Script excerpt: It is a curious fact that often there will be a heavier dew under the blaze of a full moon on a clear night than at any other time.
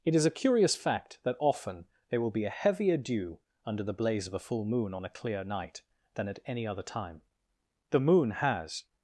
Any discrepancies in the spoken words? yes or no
yes